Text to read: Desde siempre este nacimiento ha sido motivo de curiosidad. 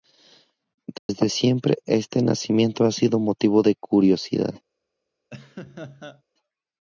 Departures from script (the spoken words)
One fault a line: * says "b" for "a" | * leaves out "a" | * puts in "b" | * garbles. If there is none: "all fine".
all fine